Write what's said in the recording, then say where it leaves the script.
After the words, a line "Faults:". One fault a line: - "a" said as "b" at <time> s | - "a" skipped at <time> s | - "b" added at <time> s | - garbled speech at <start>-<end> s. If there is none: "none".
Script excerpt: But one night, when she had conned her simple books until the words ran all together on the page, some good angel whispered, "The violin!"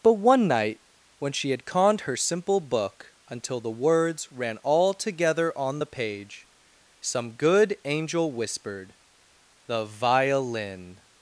But one night, when she had conned her simple book until the words ran all together on the page, some good angel whispered, "The violin!"
Faults:
- "books" said as "book" at 2.6 s